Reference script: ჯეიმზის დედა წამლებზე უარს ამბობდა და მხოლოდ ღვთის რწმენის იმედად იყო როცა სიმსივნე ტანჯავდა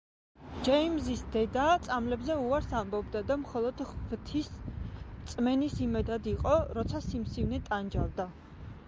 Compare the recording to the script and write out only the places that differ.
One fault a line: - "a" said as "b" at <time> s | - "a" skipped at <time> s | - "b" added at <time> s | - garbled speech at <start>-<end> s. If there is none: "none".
none